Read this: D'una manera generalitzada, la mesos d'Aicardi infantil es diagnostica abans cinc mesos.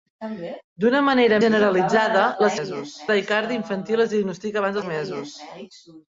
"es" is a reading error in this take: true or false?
false